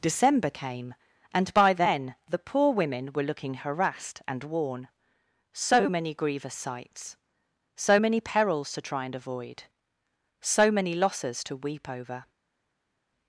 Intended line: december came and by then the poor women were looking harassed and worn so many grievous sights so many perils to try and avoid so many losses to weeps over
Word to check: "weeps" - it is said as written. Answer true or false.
false